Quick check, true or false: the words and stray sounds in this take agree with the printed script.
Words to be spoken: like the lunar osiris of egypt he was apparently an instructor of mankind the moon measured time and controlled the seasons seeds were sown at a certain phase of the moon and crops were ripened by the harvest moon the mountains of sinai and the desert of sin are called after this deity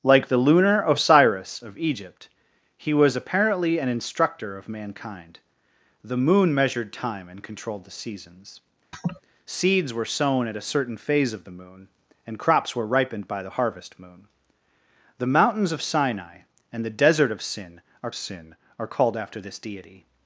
false